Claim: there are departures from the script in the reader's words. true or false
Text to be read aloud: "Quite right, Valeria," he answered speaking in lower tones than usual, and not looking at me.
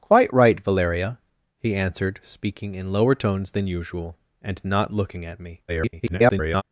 true